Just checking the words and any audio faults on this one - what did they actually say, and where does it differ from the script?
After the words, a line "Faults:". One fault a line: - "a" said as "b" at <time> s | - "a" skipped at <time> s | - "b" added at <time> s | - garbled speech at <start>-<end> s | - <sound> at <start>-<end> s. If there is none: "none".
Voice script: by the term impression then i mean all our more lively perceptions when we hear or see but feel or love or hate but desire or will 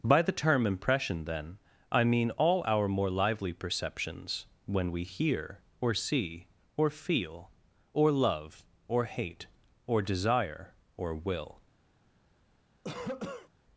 by the term impression then i mean all our more lively perceptions when we hear or see or feel or love or hate or desire or will
Faults:
- "but" said as "or" at 6.8 s
- "but" said as "or" at 9.8 s
- cough at 12.8-13.5 s